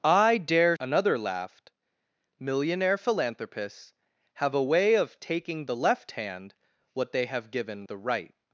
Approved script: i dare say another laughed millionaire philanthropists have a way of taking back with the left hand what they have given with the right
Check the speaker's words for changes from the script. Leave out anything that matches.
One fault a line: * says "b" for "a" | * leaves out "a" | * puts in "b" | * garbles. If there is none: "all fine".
* leaves out "say"
* leaves out "back with"
* leaves out "with"